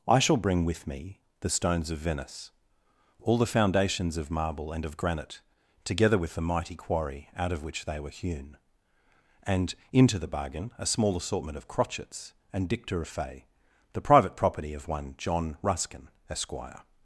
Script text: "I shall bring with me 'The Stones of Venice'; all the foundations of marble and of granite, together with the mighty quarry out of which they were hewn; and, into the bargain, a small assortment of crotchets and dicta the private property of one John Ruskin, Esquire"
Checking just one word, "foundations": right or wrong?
right